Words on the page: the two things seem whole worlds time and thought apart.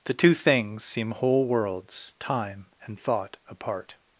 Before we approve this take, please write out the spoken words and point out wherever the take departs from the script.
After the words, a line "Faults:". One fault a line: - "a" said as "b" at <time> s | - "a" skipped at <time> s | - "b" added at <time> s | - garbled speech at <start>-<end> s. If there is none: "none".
the two things seem whole worlds time and thought apart.
Faults:
none